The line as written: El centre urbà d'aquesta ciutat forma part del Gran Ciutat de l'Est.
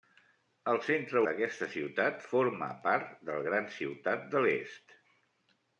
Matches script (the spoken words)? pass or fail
fail